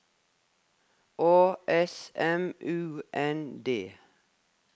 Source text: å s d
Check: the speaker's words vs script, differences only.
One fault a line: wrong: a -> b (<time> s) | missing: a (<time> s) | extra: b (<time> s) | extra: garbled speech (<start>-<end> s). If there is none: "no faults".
extra: m u n (2.1 s)